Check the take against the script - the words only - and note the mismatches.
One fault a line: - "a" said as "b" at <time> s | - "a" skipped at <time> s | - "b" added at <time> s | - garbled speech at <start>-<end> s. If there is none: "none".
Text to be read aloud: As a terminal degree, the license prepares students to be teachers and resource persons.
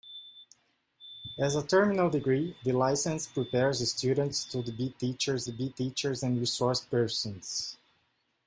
- "be teachers" added at 5.4 s